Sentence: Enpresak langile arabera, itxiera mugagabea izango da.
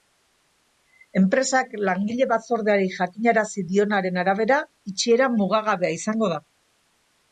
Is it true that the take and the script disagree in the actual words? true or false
true